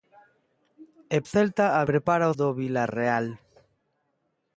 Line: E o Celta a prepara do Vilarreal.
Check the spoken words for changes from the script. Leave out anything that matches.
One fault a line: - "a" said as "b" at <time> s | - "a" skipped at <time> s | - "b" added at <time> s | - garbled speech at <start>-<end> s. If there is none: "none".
none